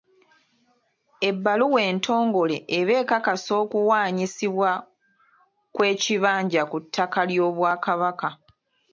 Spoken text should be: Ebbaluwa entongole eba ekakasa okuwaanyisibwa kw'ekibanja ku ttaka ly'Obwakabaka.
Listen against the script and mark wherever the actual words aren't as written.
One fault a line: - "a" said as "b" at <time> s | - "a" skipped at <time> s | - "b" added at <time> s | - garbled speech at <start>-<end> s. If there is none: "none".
none